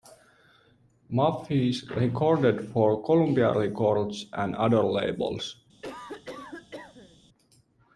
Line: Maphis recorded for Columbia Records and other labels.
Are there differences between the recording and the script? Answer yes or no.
no